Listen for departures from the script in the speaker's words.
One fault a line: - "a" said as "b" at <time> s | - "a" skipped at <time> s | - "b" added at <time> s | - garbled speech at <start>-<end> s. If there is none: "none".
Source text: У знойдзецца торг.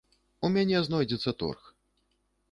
- "мяне" added at 0.5 s